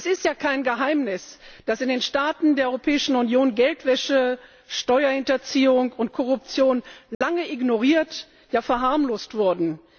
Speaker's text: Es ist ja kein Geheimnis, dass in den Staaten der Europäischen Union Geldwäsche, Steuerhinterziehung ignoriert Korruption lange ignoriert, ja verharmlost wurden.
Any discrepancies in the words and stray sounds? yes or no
yes